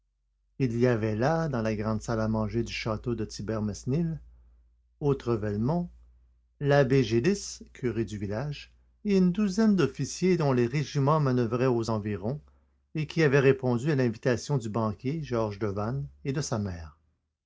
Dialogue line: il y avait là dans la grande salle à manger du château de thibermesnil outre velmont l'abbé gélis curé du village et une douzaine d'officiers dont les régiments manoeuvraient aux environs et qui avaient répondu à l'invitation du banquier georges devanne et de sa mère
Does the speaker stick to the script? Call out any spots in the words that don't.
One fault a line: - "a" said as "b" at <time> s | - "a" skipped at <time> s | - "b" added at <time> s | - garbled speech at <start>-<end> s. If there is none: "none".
none